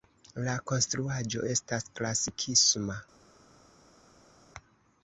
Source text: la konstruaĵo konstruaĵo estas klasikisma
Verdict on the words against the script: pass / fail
fail